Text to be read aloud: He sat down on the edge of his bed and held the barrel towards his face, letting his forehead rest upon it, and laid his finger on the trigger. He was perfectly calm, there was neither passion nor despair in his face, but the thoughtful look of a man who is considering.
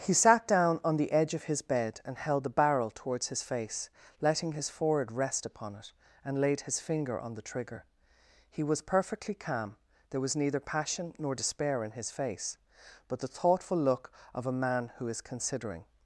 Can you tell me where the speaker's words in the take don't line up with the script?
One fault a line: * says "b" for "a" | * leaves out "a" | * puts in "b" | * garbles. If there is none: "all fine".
all fine